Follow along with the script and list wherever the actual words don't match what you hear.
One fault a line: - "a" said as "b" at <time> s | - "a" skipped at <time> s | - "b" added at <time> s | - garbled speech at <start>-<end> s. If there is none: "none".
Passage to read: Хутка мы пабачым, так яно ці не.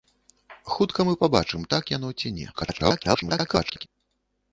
- garbled speech at 2.5-3.9 s